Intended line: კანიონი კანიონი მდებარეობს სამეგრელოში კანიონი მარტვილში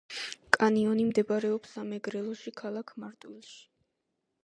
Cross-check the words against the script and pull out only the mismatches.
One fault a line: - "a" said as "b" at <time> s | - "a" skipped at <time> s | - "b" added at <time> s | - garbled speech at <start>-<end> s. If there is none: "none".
- "კანიონი" skipped at 1.1 s
- "კანიონი" said as "ქალაქ" at 2.6 s